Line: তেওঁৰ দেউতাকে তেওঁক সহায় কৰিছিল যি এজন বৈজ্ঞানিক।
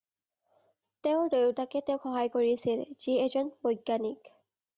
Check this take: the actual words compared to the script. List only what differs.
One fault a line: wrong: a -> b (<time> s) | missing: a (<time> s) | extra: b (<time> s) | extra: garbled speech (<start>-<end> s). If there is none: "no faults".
no faults